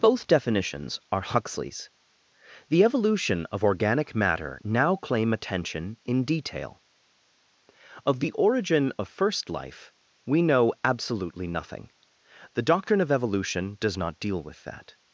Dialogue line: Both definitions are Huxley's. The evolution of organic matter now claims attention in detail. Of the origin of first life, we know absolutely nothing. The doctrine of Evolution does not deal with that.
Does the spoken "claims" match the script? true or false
false